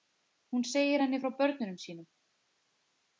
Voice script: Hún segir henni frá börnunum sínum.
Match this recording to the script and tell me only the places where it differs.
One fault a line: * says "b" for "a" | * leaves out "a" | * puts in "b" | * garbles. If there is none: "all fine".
all fine